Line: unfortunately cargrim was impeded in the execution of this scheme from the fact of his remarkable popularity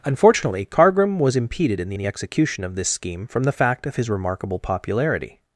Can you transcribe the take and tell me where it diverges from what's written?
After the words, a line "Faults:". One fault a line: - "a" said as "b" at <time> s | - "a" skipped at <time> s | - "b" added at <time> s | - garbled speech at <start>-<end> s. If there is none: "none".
unfortunately cargrim was impeded in the the execution of this scheme from the fact of his remarkable popularity
Faults:
- "the" added at 2.0 s